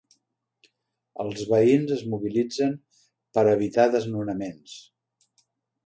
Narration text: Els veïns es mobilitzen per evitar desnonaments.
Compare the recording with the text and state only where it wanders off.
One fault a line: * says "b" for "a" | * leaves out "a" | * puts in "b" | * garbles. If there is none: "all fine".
all fine